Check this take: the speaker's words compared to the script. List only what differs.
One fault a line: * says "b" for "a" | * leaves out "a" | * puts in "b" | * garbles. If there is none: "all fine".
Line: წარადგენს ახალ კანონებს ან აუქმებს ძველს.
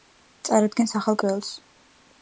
* leaves out "კანონებს ან აუქმებს"